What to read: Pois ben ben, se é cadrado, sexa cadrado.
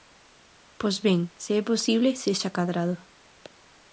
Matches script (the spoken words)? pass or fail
fail